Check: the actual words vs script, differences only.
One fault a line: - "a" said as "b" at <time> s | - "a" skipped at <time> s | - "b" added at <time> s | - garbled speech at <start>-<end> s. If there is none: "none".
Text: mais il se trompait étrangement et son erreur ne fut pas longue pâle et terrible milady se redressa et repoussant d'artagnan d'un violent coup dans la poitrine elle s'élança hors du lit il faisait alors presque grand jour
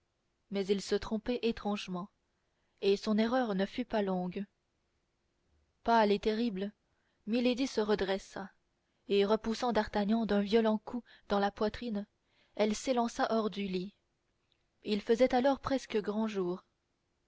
none